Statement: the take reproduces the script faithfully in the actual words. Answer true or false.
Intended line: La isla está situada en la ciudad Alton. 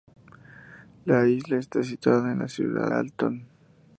true